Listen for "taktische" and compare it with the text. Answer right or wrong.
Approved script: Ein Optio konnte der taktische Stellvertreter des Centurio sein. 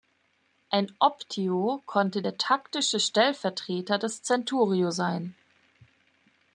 right